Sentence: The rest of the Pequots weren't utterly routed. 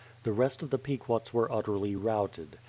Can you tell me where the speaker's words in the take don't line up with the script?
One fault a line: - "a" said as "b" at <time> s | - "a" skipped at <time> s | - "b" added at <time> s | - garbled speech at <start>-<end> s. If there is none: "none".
- "weren't" said as "were" at 1.3 s